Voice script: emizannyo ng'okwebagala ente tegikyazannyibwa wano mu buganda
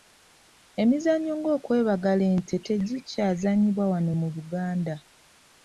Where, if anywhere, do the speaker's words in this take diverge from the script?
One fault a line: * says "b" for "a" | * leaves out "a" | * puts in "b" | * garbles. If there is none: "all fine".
all fine